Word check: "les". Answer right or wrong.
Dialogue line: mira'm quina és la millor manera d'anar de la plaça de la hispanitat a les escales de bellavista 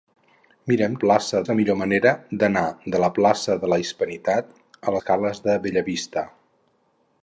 wrong